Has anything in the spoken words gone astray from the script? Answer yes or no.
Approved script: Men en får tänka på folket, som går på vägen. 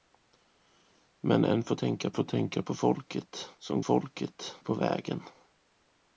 yes